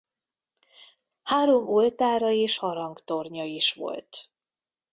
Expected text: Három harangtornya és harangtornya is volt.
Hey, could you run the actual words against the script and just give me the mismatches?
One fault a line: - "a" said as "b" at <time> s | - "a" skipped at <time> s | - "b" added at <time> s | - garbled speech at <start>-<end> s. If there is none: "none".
- "harangtornya" said as "oltára" at 1.7 s